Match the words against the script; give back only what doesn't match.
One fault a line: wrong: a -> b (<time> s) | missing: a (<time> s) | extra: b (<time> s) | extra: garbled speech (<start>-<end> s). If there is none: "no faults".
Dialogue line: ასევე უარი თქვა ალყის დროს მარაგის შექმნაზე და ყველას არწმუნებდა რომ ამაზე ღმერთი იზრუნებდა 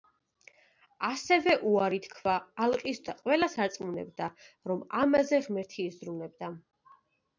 missing: დროს მარაგის შექმნაზე (3.0 s)